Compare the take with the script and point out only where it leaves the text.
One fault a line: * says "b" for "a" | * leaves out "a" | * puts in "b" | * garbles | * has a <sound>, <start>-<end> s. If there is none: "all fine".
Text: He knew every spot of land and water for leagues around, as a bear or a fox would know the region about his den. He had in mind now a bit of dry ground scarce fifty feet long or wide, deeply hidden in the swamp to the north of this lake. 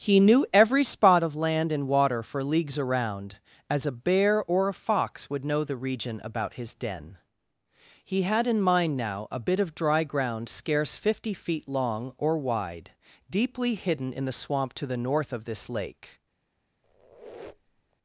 * has a squeak, 16.8-18.0 s